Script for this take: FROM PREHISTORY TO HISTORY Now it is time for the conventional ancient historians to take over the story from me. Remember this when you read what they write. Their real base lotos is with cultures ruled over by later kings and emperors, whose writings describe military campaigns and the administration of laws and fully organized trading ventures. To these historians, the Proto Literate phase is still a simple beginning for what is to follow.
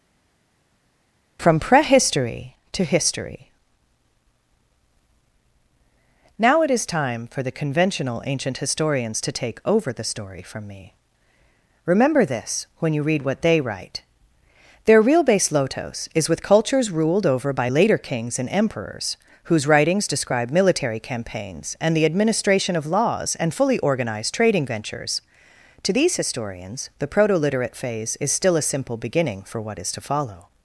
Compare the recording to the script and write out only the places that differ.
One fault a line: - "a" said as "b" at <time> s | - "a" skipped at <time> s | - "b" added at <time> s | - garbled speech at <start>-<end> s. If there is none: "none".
none